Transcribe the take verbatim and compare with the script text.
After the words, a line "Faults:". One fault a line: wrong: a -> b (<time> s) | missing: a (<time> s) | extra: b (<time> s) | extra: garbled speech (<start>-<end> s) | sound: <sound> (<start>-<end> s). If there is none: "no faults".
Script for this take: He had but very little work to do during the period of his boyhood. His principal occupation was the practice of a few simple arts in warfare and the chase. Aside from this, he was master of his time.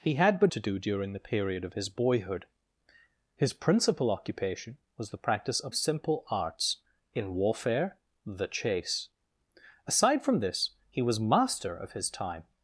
He had but to do during the period of his boyhood. His principal occupation was the practice of simple arts in warfare the chase. Aside from this, he was master of his time.
Faults:
missing: very little work (0.5 s)
missing: a few (5.7 s)
missing: and (8.0 s)